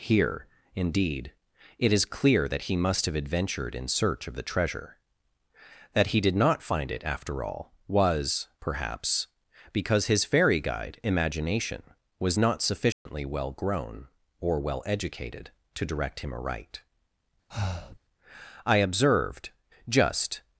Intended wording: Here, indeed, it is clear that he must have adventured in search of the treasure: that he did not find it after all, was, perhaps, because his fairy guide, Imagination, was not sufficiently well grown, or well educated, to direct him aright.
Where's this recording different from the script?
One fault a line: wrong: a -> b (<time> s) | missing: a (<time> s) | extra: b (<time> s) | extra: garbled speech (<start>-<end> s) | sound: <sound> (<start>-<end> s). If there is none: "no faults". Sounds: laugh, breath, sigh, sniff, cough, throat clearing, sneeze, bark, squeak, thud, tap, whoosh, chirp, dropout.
sound: dropout (12.9-13.1 s)
sound: breath (17.5-18.0 s)
extra: I observed just (18.7 s)